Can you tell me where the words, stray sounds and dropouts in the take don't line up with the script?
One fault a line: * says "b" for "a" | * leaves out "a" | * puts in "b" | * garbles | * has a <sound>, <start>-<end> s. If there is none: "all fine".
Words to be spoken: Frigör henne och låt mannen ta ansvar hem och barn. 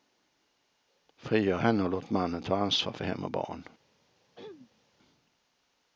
* puts in "för"
* has a throat clearing, 4.3-4.8 s